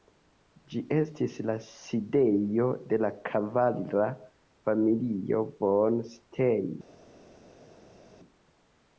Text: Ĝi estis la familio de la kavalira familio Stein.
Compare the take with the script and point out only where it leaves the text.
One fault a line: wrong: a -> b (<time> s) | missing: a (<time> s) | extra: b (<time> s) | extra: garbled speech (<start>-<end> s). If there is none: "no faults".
wrong: familio -> sidejo (1.6 s)
extra: von (5.6 s)